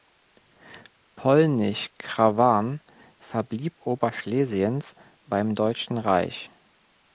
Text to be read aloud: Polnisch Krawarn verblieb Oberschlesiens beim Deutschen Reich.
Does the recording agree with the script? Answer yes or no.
yes